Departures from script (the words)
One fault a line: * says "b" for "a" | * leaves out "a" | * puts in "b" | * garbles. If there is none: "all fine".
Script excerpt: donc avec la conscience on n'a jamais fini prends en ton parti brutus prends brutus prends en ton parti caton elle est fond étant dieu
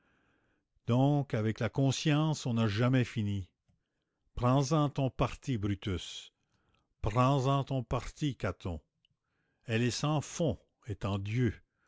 * leaves out "brutus prends"
* puts in "sans"